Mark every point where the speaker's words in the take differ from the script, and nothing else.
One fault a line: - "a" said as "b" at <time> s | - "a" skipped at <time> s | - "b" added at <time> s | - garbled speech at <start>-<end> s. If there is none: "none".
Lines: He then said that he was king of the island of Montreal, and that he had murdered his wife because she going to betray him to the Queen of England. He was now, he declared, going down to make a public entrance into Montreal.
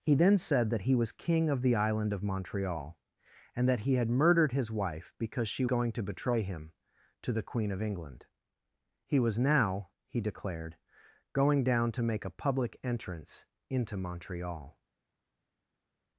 none